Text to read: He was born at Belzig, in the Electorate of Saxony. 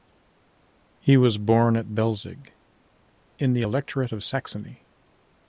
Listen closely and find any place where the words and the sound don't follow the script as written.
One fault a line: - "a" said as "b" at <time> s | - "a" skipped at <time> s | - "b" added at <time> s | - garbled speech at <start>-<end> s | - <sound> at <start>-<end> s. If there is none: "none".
none